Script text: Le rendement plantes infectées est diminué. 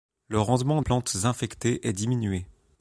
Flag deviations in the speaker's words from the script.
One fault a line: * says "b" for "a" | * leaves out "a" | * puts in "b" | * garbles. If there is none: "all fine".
all fine